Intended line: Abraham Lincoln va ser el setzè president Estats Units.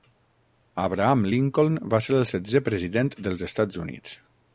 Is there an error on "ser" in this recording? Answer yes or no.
no